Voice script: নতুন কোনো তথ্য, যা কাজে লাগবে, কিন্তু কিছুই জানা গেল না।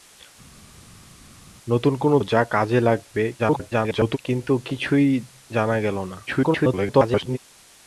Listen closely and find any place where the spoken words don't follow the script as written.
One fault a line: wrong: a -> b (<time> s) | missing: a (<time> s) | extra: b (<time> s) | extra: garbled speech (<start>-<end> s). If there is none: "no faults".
missing: তথ্য (2.2 s)
extra: garbled speech (3.4-4.2 s)
extra: garbled speech (6.3-7.4 s)